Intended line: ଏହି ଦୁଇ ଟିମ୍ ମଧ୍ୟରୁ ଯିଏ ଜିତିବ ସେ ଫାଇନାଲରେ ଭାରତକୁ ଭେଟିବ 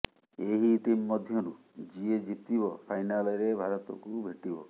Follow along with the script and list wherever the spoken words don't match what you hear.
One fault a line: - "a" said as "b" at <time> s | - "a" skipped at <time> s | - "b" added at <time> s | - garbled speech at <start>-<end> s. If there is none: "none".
- "ଦୁଇ" skipped at 0.7 s
- "ସେ" skipped at 2.7 s